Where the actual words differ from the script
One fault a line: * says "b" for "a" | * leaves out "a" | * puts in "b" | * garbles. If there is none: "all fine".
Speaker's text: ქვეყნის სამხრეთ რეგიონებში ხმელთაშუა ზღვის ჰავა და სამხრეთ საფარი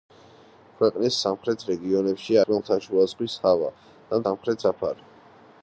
all fine